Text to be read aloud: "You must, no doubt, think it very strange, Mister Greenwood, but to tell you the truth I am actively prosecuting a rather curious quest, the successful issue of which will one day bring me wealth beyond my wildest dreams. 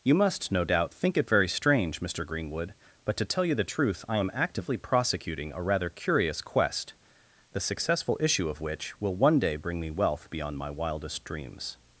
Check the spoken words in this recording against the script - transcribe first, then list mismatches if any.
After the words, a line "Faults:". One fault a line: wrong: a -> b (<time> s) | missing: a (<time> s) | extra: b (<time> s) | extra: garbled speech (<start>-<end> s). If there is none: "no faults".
"You must, no doubt, think it very strange, Mister Greenwood, but to tell you the truth I am actively prosecuting a rather curious quest, the successful issue of which will one day bring me wealth beyond my wildest dreams.
Faults:
no faults